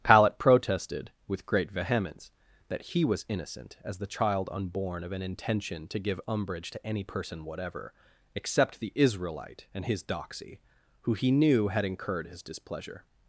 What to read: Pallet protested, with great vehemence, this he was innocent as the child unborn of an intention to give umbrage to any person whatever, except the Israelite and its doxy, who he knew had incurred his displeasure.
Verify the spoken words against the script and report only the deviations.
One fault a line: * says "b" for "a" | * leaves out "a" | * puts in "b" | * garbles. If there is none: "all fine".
* says "that" for "this"
* says "his" for "its"